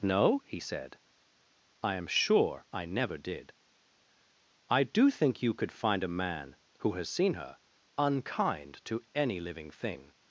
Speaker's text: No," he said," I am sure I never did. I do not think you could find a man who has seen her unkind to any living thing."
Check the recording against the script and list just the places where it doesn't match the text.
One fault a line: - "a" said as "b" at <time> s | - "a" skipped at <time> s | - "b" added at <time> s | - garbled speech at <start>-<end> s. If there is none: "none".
- "not" skipped at 5.1 s